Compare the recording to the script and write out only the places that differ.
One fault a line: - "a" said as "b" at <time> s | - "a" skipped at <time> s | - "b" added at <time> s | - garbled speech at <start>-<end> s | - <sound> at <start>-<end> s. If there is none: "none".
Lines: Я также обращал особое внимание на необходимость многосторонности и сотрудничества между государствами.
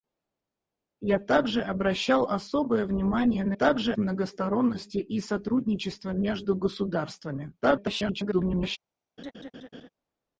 - "необходимость" said as "также" at 3.5 s
- garbled speech at 7.6-8.8 s
- laugh at 9.2-9.9 s